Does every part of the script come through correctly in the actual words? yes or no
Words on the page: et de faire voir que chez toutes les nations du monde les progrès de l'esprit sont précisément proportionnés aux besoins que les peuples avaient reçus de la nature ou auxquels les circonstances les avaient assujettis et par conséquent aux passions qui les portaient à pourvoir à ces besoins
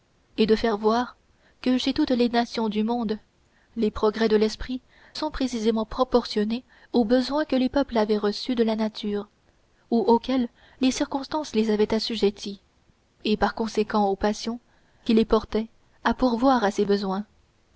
yes